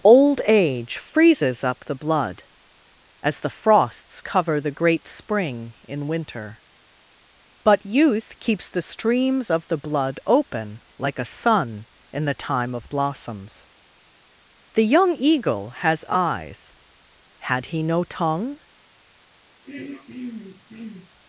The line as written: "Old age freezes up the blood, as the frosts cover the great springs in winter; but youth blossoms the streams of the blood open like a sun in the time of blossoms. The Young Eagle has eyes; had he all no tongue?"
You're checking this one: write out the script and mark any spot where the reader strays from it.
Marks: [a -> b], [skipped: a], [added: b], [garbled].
"Old age freezes up the blood, as the frosts cover the great [springs -> spring] in winter; but youth [blossoms -> keeps] the streams of the blood open like a sun in the time of blossoms. The Young Eagle has eyes; had he [skipped: all] no tongue?"